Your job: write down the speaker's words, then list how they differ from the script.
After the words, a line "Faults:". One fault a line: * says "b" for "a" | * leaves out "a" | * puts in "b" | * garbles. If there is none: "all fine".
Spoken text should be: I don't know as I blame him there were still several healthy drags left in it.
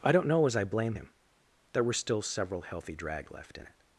I don't know as I blame him there were still several healthy drag left in it.
Faults:
* says "drag" for "drags"